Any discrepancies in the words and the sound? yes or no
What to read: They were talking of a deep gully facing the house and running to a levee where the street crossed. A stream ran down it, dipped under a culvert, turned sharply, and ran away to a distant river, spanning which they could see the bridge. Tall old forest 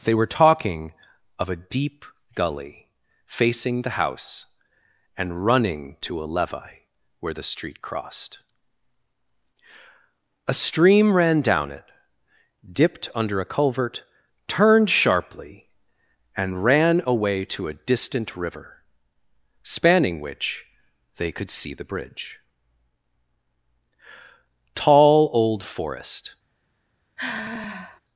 yes